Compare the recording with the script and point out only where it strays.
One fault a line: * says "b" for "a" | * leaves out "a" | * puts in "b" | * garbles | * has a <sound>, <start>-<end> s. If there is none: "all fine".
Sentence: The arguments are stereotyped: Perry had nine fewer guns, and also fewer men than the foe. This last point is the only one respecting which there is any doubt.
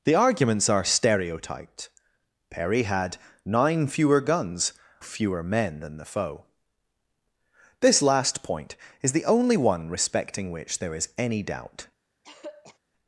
* leaves out "and also"
* has a throat clearing, 12.2-12.8 s